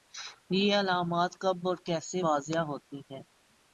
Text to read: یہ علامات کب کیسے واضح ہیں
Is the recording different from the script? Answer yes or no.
yes